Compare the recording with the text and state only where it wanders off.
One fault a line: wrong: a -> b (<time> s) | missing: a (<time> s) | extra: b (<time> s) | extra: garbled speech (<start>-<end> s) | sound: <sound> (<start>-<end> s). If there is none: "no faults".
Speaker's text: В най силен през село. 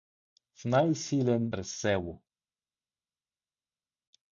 no faults